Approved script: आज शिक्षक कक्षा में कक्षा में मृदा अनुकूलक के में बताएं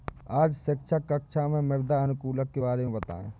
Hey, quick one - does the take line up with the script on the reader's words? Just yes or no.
no